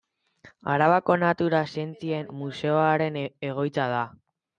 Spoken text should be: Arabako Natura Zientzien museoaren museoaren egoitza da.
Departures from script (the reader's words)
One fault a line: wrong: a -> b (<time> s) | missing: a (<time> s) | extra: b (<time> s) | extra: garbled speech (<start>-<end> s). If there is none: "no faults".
missing: museoaren (3.2 s)